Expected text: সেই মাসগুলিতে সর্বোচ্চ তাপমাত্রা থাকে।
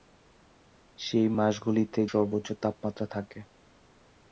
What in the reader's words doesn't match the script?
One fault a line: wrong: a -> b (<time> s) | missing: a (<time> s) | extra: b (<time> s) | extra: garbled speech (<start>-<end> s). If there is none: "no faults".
no faults